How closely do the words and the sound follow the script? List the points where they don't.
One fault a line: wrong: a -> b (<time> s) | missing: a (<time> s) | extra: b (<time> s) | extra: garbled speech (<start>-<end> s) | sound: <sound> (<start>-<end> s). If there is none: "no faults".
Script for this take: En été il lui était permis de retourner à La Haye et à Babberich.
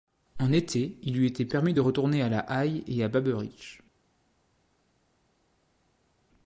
no faults